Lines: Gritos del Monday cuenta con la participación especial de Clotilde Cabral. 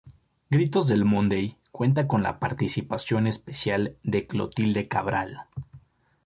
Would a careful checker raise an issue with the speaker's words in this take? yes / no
no